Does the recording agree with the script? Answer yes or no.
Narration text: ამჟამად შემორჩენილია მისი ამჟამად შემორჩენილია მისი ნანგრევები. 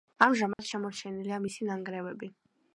no